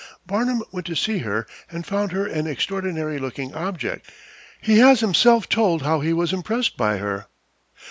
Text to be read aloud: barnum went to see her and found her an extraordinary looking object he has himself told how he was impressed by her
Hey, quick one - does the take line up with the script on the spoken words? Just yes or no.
yes